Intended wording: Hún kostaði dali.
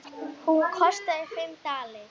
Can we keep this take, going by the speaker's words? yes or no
no